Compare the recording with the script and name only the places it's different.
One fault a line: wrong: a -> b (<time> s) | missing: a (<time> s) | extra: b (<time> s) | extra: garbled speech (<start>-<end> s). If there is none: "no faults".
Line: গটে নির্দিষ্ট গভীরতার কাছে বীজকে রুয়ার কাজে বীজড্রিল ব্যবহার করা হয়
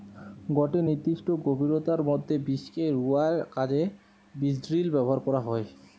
wrong: কাছে -> মধ্যে (2.1 s)